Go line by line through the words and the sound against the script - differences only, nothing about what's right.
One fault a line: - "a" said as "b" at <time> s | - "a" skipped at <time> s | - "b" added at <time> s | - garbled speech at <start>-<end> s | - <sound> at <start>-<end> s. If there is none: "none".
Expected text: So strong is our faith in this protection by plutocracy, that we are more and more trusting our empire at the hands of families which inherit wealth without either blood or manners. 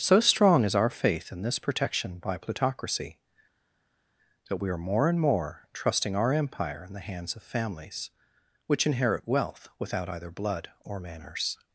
- "at" said as "in" at 6.8 s